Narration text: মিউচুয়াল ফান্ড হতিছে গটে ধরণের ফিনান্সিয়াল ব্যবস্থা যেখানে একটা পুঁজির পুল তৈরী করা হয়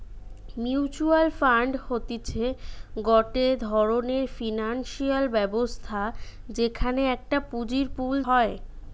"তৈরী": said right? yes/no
no